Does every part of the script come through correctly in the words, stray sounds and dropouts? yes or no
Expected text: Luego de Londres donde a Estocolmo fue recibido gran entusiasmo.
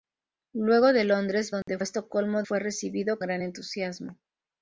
no